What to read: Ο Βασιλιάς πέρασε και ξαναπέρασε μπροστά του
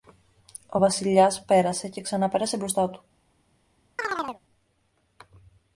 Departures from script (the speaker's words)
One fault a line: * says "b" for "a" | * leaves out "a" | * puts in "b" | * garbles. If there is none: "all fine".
all fine